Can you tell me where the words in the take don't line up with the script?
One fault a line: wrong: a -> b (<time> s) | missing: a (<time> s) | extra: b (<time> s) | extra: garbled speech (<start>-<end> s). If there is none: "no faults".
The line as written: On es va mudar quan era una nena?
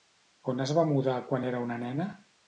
no faults